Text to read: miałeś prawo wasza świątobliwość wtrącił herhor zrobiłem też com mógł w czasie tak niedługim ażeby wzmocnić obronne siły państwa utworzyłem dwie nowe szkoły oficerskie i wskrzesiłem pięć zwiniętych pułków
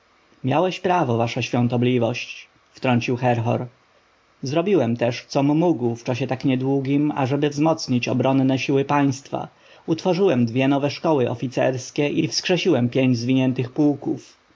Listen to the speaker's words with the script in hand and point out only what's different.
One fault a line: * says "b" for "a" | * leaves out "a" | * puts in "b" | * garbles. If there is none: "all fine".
all fine